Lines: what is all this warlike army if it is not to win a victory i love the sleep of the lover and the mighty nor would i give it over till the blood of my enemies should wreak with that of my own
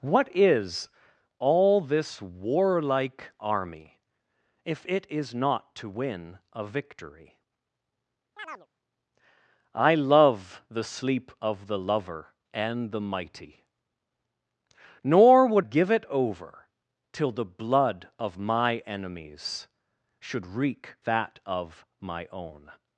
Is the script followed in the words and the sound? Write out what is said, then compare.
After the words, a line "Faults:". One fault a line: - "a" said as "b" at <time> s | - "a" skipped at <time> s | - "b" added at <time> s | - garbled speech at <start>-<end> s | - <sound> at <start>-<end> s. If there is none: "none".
what is all this warlike army if it is not to win a victory i love the sleep of the lover and the mighty nor would give it over till the blood of my enemies should wreak that of my own
Faults:
- chirp at 8.4-8.7 s
- "i" skipped at 15.7 s
- "with" skipped at 20.9 s